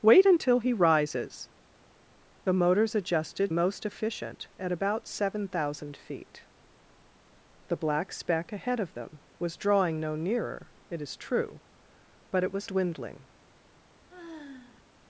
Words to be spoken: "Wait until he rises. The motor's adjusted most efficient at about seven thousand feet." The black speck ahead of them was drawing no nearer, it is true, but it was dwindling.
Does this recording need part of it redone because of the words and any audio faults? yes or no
yes